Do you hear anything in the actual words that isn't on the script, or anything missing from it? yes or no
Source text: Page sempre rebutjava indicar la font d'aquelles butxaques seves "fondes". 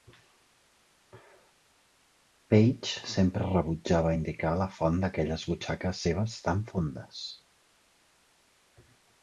yes